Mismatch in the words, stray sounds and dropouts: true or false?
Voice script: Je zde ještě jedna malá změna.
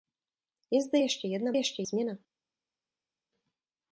true